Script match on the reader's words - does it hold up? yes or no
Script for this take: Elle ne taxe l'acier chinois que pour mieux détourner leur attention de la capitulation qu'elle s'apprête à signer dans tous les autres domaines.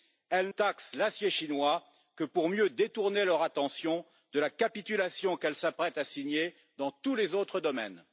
no